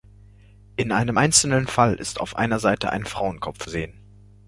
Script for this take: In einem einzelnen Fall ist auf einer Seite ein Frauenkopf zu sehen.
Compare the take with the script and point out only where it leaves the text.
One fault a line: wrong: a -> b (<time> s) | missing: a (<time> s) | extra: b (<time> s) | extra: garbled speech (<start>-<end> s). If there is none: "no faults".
missing: zu (3.7 s)